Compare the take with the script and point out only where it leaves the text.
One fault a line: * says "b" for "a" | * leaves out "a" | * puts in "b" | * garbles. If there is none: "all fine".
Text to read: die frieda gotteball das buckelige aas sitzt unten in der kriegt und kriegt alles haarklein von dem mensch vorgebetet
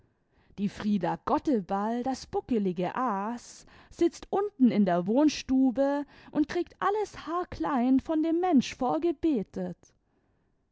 * says "wohnstube" for "kriegt"